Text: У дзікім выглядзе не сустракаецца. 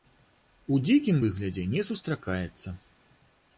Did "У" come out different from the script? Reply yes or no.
no